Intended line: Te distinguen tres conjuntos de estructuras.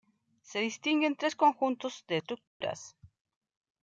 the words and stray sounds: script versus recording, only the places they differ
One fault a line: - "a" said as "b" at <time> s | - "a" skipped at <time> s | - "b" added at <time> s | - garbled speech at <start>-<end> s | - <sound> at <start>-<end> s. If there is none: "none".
- "Te" said as "Se" at 0.4 s
- dropout at 2.5-2.6 s